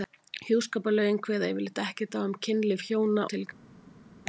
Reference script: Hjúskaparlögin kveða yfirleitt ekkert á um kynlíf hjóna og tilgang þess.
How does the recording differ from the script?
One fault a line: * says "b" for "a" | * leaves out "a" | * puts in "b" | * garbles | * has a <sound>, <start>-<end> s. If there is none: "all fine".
* leaves out "og"